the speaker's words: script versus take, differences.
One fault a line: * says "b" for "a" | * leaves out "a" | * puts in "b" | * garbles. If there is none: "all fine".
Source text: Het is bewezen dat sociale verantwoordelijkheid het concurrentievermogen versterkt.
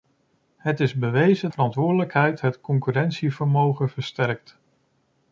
* leaves out "dat sociale"